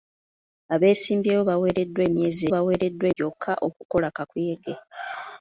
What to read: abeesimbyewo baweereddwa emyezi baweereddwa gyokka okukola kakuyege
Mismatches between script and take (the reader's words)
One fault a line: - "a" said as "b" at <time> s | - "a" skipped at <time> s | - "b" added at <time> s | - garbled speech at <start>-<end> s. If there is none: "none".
none